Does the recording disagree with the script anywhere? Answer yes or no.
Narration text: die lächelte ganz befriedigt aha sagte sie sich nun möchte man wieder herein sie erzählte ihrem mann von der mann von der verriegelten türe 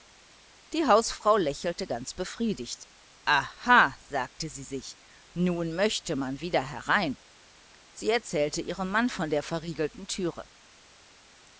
yes